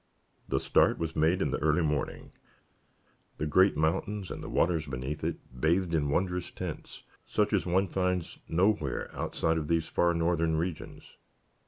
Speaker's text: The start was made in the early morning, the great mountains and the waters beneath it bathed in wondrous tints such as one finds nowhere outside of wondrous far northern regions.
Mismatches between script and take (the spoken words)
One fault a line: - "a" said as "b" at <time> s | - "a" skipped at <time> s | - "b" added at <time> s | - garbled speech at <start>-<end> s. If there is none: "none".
- "wondrous" said as "these" at 9.7 s